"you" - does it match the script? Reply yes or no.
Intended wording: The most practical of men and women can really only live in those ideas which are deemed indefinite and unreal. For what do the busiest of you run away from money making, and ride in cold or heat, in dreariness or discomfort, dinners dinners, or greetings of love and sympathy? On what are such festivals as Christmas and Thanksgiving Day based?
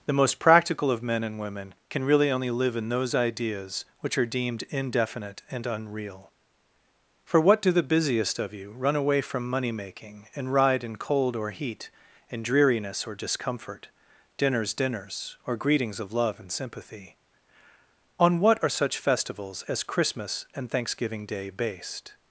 yes